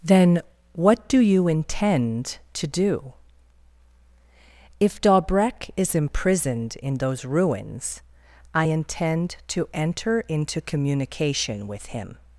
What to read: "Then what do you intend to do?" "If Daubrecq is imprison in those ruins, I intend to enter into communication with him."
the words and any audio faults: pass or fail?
fail